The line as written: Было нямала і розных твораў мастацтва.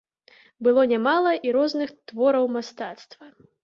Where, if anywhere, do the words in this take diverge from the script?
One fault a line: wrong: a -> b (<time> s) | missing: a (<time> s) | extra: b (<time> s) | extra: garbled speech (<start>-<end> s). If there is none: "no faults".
no faults